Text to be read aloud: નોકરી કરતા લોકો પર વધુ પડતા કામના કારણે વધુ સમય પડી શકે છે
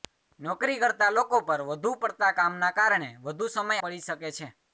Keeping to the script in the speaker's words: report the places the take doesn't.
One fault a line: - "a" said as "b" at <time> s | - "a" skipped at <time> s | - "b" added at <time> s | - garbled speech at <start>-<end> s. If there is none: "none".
none